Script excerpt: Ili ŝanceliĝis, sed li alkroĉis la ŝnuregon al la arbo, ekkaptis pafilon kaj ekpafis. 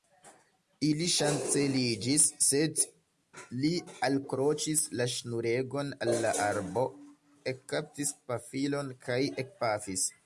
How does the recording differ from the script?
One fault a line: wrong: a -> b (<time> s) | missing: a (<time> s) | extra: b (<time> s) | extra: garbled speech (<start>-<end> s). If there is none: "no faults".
no faults